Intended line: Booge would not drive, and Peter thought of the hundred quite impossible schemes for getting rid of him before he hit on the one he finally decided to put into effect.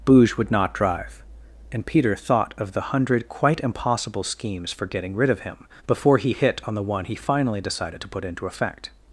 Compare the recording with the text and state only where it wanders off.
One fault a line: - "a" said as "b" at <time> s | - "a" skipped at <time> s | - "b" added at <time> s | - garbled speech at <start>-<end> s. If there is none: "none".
none